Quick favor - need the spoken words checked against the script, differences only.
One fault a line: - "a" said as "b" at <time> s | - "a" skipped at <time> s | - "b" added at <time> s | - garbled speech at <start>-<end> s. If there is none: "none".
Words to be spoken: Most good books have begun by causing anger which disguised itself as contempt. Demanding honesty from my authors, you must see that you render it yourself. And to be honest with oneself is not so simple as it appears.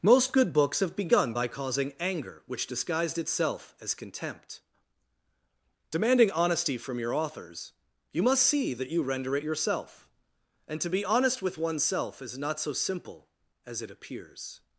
- "my" said as "your" at 7.0 s